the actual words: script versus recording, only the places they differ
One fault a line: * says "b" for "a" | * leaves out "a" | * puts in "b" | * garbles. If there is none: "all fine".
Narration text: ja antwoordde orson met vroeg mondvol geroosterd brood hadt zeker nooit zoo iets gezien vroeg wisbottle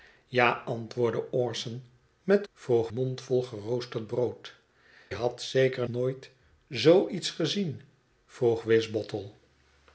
all fine